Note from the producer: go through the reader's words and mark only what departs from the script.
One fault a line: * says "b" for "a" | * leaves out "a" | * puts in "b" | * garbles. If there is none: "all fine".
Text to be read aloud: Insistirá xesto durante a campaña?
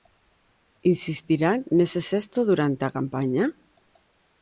* puts in "nese"